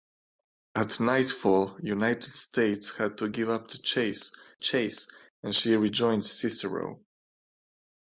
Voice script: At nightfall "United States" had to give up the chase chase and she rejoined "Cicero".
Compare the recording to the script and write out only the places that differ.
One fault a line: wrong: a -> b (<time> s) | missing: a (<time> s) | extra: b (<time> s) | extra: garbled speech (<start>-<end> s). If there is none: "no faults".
no faults